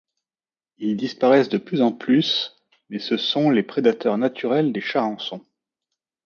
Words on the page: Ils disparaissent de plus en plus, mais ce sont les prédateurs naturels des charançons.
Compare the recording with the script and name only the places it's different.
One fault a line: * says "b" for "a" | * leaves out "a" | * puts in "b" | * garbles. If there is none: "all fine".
all fine